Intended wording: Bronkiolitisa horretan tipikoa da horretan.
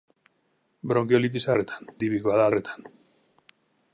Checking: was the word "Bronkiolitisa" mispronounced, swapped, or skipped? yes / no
no